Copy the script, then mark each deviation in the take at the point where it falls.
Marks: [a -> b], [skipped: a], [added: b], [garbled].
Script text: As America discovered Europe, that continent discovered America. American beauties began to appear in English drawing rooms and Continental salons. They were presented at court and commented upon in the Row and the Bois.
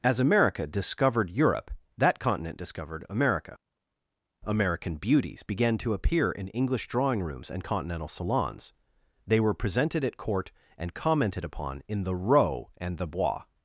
As America discovered Europe, that continent discovered America. American beauties began to appear in English drawing rooms and Continental salons. They were presented at court and commented upon in the Row and the Bois.